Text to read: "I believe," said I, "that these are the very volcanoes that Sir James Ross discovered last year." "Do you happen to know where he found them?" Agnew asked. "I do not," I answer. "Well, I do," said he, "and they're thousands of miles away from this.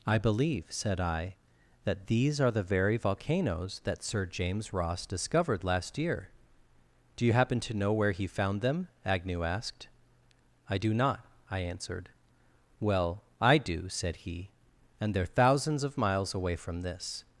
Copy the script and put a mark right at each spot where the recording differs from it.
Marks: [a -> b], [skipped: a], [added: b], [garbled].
"I believe," said I, "that these are the very volcanoes that Sir James Ross discovered last year." "Do you happen to know where he found them?" Agnew asked. "I do not," I [answer. -> answered] "Well, I do," said he, "and they're thousands of miles away from this.